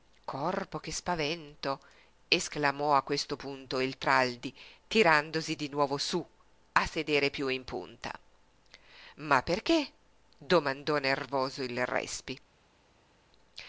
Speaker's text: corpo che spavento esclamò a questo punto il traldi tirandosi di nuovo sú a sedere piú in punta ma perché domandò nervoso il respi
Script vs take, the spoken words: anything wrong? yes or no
no